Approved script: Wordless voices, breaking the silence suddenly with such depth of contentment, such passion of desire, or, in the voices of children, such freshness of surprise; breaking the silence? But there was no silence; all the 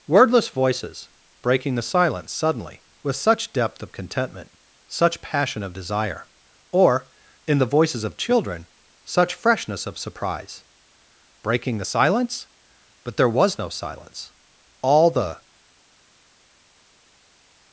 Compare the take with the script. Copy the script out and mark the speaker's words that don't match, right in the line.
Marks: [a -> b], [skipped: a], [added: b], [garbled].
Wordless voices, breaking the silence suddenly with such depth of contentment, such passion of desire, or, in the voices of children, such freshness of surprise; breaking the silence? But there was no silence; all the